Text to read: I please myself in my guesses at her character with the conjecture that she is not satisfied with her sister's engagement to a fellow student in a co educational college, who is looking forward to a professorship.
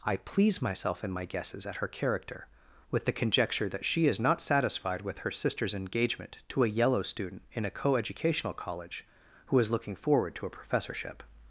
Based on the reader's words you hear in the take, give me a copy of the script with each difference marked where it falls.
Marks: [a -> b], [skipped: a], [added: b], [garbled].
I please myself in my guesses at her character with the conjecture that she is not satisfied with her sister's engagement to a [fellow -> yellow] student in a co educational college, who is looking forward to a professorship.